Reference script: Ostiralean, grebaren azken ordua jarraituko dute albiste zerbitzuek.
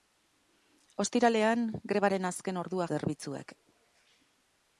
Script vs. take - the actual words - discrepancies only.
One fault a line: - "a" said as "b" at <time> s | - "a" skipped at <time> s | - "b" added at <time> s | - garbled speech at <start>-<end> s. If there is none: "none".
- "jarraituko dute albiste" skipped at 2.9 s